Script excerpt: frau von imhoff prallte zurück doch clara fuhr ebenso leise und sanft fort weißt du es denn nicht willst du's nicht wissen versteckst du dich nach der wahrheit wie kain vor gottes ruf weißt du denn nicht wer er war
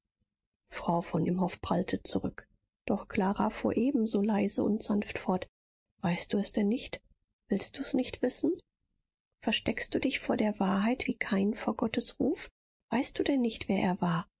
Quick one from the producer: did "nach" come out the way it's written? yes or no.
no